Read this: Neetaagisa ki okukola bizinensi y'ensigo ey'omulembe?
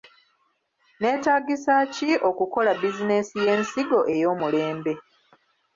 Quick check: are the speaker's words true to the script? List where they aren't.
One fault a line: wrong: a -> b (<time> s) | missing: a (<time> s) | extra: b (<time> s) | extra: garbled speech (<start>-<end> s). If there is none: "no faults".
no faults